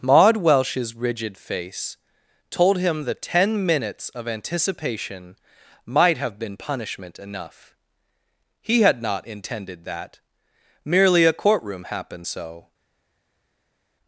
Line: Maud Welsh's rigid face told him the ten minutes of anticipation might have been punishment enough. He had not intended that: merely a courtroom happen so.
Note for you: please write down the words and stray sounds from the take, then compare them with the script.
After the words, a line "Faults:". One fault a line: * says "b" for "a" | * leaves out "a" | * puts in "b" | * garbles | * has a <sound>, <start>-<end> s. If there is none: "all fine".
Maud Welsh's rigid face told him the ten minutes of anticipation might have been punishment enough. He had not intended that: merely a courtroom happened so.
Faults:
* says "happened" for "happen"